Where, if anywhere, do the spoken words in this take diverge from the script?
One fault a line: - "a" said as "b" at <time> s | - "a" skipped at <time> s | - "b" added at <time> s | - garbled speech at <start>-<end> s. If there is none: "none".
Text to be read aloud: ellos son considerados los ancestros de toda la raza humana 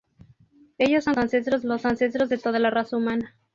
- "considerados" said as "ancestros" at 1.2 s